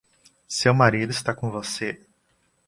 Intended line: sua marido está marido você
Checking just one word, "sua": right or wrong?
wrong